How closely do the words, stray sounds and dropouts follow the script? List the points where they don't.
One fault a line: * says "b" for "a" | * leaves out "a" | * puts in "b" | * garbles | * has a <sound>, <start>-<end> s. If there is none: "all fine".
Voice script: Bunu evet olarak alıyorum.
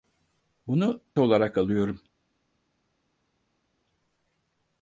* leaves out "evet"